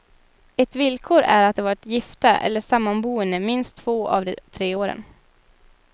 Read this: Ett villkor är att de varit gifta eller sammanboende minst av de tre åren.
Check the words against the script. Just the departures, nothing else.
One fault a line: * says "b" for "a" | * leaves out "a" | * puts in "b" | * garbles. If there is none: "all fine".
* puts in "två"